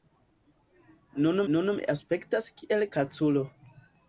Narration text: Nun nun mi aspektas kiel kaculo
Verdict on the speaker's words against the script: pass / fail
pass